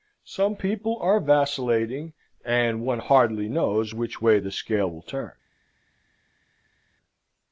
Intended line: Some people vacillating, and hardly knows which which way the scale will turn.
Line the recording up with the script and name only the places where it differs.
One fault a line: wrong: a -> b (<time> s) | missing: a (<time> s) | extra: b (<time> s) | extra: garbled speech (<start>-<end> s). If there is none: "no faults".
extra: are (1.0 s)
extra: one (2.8 s)
missing: which (4.2 s)